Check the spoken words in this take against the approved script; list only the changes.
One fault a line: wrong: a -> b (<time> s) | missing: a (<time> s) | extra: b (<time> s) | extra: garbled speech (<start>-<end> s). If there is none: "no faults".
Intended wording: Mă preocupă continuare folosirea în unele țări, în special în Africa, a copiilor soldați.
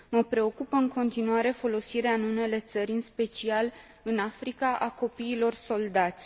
extra: în (0.8 s)